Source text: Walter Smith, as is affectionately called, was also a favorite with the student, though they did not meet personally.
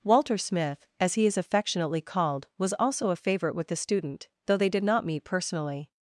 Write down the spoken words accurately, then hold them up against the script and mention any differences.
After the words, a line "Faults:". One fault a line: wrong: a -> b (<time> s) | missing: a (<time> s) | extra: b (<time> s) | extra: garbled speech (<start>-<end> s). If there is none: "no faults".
Walter Smith, as he is affectionately called, was also a favorite with the student, though they did not meet personally.
Faults:
extra: he (1.1 s)